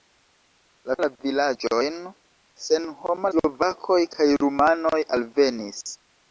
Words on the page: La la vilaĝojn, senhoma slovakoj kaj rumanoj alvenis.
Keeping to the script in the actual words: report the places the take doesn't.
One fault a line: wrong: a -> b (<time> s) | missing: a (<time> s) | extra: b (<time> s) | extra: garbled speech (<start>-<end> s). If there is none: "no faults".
no faults